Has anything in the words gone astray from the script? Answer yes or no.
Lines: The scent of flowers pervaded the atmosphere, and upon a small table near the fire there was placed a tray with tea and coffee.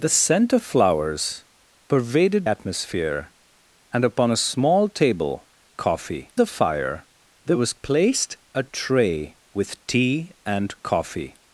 yes